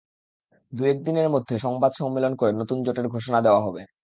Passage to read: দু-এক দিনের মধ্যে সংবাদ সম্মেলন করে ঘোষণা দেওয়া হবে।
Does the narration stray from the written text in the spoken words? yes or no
yes